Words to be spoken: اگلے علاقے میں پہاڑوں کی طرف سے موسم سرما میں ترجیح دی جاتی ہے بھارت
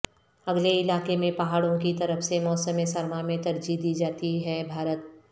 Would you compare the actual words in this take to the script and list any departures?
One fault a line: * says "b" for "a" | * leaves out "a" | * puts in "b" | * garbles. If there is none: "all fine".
all fine